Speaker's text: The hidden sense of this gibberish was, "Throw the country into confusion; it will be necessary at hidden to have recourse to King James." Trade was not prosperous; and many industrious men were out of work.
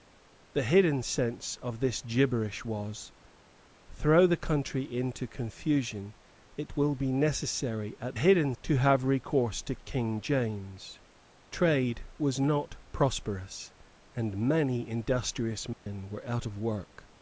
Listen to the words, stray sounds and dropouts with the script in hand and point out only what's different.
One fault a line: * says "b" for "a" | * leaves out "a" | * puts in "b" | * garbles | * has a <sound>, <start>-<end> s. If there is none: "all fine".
* has a dropout, 15.7-15.9 s